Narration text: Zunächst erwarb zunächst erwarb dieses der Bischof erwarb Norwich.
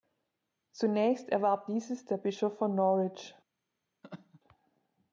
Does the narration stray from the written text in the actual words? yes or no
yes